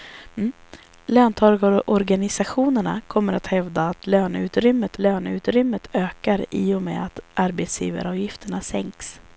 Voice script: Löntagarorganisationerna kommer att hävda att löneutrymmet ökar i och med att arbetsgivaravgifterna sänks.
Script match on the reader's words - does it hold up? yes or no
no